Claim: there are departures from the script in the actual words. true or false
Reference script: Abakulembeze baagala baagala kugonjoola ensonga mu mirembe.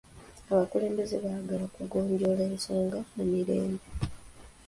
true